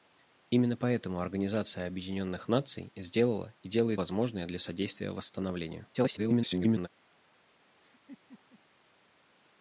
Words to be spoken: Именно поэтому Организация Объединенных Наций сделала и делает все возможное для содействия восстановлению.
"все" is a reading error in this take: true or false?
true